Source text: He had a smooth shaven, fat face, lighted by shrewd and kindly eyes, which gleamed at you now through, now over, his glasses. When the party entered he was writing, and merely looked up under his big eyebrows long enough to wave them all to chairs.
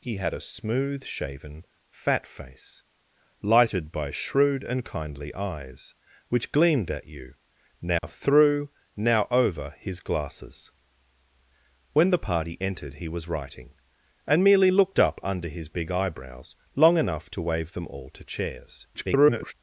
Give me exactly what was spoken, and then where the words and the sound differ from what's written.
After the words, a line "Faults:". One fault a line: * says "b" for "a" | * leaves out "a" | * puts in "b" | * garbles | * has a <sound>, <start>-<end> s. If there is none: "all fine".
He had a smooth shaven, fat face, lighted by shrewd and kindly eyes, which gleamed at you now through, now over, his glasses. When the party entered he was writing, and merely looked up under his big eyebrows long enough to wave them all to chairs. [garbled]
Faults:
* has a dropout, 8.0-8.0 s
* garbles